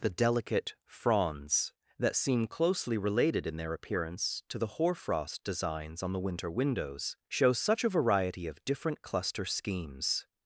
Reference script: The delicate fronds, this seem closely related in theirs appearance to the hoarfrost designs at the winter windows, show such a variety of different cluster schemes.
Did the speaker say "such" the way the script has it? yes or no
yes